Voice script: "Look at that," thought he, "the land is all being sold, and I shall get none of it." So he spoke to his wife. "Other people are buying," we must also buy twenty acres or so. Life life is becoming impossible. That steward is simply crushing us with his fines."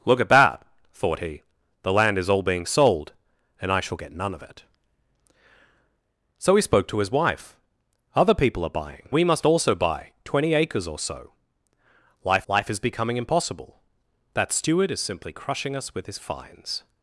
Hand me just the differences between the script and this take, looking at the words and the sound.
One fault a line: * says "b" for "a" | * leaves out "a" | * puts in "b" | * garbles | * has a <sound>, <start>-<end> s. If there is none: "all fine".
all fine